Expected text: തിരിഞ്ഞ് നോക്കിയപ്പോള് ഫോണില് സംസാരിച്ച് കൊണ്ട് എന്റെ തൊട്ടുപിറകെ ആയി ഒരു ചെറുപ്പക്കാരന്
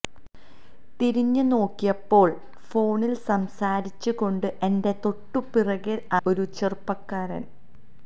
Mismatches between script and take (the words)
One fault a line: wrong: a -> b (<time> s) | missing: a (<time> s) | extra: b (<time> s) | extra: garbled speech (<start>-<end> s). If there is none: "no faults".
missing: ആയി (6.0 s)